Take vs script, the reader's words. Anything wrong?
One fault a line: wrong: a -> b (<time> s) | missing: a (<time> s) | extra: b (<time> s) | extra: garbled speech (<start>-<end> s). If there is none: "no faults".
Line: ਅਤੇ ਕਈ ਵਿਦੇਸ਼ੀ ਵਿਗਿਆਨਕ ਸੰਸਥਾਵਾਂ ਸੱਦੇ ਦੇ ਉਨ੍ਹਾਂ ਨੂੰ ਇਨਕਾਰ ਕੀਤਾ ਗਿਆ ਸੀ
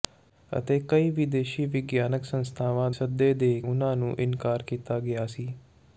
no faults